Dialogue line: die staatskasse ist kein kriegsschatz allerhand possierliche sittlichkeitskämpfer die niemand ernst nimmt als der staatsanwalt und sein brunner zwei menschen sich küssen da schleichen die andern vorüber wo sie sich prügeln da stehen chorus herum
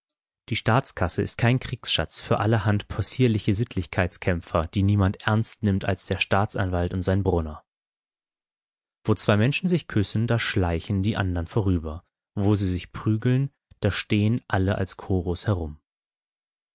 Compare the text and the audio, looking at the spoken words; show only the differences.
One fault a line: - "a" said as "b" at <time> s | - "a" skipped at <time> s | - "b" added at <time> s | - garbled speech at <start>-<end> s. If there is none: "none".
- "für" added at 2.2 s
- "wo" added at 9.0 s
- "alle als" added at 14.5 s